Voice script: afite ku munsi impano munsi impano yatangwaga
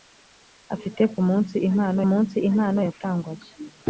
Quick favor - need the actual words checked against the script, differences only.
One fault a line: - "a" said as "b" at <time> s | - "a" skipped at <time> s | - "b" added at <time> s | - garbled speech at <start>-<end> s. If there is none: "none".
none